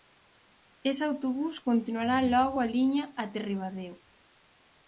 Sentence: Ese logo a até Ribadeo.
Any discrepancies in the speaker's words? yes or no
yes